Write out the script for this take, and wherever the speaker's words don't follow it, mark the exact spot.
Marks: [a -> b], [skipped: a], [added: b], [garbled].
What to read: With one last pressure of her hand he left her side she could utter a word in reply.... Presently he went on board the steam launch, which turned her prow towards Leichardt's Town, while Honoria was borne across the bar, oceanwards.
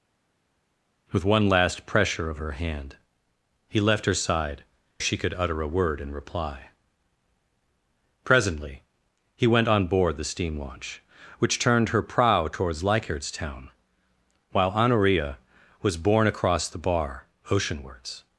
With one last pressure of her hand he left her side she could utter a word in reply.... Presently he went on board the steam launch, which turned her prow towards Leichardt's Town, while Honoria was borne across the bar, oceanwards.